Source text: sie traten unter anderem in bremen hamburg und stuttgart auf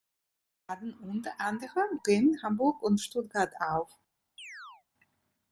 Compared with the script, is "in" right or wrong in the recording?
wrong